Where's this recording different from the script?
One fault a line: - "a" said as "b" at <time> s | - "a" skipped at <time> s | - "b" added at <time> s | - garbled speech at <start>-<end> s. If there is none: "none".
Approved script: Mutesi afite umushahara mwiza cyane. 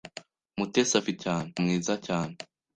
- "umushahara" said as "cyane" at 1.2 s